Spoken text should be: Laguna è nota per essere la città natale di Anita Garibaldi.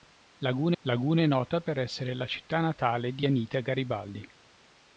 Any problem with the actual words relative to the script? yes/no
yes